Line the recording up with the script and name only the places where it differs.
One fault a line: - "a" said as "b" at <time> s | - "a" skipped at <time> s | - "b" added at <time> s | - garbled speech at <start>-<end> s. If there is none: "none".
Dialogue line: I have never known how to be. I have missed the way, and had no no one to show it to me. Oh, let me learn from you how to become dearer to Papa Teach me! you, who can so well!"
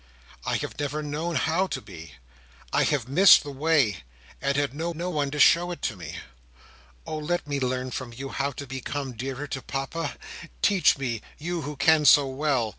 none